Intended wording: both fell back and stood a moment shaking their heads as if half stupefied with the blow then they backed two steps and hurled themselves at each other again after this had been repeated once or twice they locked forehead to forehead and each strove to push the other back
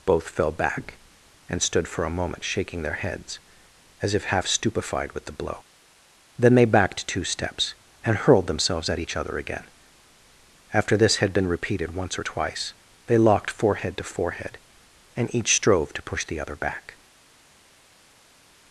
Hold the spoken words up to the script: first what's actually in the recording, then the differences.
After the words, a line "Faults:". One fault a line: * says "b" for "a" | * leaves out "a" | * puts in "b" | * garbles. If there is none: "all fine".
both fell back and stood for a moment shaking their heads as if half stupefied with the blow then they backed two steps and hurled themselves at each other again after this had been repeated once or twice they locked forehead to forehead and each strove to push the other back
Faults:
* puts in "for"